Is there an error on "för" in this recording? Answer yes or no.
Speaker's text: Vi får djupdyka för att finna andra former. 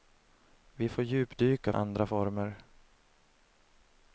yes